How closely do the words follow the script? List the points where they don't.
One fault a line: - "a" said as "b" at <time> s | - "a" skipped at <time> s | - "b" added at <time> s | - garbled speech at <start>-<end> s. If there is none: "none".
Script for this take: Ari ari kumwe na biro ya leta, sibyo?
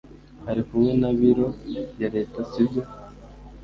- "ari" skipped at 0.6 s